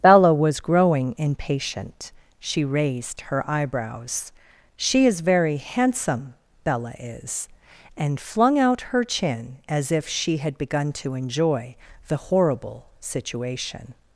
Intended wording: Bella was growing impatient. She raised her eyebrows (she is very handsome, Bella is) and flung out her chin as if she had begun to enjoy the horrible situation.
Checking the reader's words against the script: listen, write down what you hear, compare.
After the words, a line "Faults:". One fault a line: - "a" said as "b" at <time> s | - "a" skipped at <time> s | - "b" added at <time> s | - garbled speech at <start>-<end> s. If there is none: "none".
Bella was growing impatient. She raised her eyebrows (she is very handsome, Bella is) and flung out her chin as if she had begun to enjoy the horrible situation.
Faults:
none